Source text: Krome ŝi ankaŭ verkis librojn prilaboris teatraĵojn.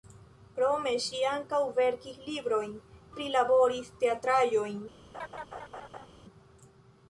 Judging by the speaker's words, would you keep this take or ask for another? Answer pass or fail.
pass